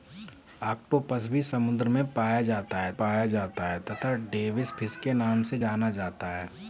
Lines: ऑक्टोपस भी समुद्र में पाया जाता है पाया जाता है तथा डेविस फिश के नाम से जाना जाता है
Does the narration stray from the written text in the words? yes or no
no